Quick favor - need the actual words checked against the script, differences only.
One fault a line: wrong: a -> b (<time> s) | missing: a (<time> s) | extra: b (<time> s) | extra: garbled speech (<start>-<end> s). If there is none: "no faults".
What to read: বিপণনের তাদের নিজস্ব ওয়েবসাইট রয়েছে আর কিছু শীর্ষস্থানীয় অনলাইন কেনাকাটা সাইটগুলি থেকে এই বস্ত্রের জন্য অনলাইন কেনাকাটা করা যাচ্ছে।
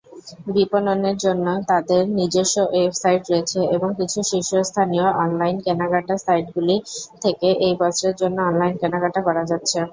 extra: জন্য (1.2 s)
wrong: আর -> এবং (3.8 s)